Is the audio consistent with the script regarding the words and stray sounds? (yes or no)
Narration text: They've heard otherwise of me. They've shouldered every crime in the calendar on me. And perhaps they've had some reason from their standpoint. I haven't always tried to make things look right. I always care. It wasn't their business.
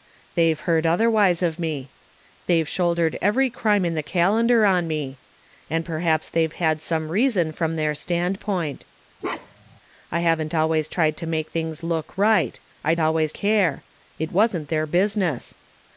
no